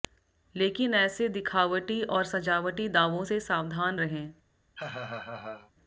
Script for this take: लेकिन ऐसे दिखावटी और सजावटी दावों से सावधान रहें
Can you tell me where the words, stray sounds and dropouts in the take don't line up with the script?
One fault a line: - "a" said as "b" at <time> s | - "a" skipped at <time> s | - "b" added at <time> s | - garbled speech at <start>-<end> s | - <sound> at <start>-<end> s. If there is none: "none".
- laugh at 4.8-5.7 s